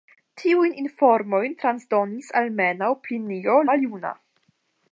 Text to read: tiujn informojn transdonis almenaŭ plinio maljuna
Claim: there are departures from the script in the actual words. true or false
false